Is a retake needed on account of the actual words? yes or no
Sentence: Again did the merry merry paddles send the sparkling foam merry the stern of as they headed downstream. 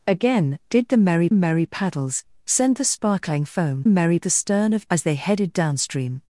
no